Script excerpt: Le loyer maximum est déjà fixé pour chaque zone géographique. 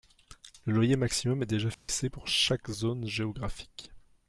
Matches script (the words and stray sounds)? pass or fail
fail